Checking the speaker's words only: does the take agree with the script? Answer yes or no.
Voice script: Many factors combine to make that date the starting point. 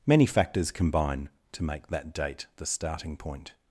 yes